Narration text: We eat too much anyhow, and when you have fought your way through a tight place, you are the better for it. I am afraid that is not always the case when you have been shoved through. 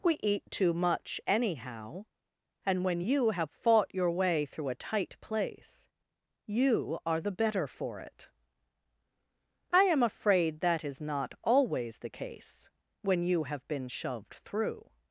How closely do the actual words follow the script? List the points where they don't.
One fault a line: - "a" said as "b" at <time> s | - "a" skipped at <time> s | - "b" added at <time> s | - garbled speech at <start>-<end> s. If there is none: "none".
none